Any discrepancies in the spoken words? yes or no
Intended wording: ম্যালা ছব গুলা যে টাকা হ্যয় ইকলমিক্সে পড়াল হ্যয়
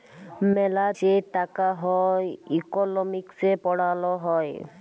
yes